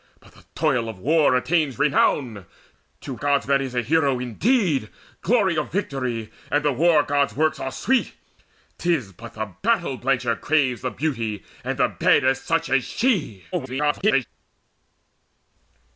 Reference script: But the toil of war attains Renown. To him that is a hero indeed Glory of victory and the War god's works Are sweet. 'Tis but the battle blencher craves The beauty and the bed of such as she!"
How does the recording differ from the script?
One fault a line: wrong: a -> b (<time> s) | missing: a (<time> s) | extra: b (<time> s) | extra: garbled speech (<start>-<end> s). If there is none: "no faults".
wrong: him -> god's (3.2 s)
extra: garbled speech (13.5-14.3 s)